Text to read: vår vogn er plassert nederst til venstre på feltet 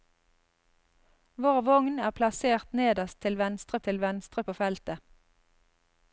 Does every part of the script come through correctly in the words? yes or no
no